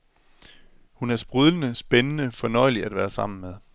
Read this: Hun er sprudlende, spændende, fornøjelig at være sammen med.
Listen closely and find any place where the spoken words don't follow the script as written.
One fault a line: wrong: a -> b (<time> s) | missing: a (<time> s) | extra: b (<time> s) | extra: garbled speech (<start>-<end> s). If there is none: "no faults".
no faults